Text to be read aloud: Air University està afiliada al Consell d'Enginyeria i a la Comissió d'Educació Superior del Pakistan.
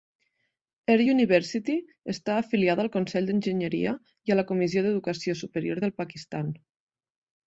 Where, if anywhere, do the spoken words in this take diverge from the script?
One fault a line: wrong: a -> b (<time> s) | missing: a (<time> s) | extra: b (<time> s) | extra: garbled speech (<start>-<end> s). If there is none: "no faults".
no faults